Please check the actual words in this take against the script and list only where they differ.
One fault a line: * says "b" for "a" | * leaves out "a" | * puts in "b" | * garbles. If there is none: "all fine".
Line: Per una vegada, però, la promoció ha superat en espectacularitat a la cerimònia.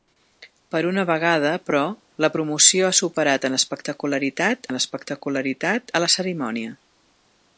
* puts in "en espectacularitat"